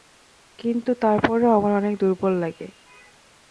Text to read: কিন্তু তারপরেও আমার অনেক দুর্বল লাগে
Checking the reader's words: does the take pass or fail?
pass